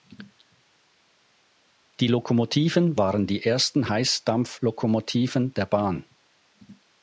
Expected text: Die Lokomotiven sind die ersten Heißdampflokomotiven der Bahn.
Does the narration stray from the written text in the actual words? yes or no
yes